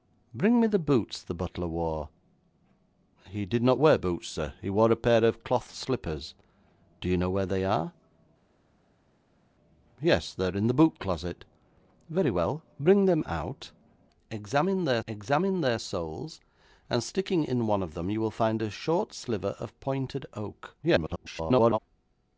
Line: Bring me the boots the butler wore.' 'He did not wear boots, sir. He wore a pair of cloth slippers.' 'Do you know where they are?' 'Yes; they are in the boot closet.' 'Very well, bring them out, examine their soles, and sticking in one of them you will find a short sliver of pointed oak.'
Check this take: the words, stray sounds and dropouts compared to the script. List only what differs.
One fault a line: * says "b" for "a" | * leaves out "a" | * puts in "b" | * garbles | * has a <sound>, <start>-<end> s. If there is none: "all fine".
* puts in "examine their"
* garbles